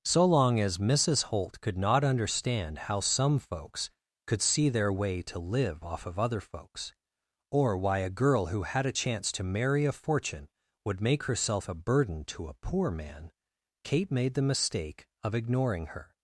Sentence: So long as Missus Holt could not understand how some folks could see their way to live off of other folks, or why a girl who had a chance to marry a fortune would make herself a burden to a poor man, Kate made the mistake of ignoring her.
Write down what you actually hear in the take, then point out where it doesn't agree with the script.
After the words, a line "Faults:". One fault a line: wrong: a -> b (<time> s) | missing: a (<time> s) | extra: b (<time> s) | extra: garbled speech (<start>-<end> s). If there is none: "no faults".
So long as Missus Holt could not understand how some folks could see their way to live off of other folks, or why a girl who had a chance to marry a fortune would make herself a burden to a poor man, Kate made the mistake of ignoring her.
Faults:
no faults